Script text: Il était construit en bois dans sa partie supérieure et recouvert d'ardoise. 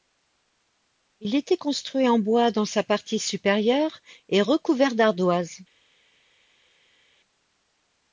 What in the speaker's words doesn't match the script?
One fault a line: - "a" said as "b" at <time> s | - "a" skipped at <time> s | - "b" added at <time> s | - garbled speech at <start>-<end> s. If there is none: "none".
none